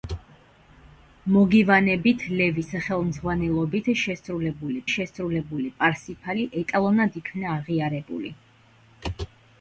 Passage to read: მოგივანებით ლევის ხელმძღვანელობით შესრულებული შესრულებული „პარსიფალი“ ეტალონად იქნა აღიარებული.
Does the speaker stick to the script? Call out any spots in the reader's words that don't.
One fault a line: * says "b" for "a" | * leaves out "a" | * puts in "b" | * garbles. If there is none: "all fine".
all fine